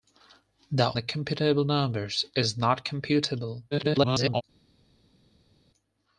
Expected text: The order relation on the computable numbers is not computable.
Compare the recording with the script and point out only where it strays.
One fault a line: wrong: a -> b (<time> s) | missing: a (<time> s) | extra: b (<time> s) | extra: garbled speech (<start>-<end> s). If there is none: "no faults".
missing: order relation on (0.9 s)
extra: garbled speech (3.7-4.4 s)